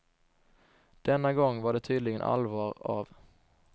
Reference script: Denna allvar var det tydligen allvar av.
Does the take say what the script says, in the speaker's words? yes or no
no